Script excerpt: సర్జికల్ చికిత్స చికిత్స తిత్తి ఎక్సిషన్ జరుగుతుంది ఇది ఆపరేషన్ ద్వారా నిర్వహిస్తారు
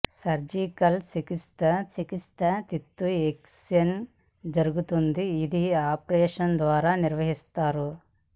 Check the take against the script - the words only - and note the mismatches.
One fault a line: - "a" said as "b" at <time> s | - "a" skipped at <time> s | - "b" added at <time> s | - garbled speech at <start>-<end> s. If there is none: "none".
none